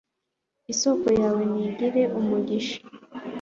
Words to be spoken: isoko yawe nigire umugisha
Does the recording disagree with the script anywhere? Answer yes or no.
no